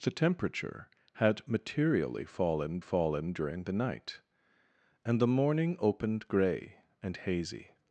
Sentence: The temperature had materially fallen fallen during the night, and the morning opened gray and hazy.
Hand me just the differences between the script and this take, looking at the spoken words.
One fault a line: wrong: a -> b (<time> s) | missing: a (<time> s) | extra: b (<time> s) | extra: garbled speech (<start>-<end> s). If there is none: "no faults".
no faults